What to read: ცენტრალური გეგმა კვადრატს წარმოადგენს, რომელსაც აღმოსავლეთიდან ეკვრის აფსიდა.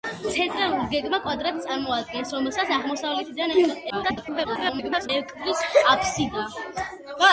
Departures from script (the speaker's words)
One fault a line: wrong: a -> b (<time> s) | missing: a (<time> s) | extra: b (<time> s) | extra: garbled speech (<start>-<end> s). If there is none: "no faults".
extra: garbled speech (3.9-5.1 s)